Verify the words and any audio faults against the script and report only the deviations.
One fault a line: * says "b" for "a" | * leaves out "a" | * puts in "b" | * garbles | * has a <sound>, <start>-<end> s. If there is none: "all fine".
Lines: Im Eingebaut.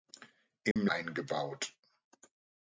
* has a dropout, 0.7-0.8 s